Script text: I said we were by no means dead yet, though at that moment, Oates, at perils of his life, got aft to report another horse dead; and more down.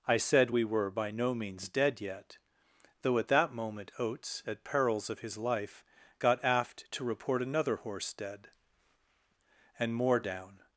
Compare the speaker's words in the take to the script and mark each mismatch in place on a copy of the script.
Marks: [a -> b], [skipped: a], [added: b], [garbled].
I said we were by no means dead yet, though at that moment, Oates, at perils of his life, got aft to report another horse dead; and more down.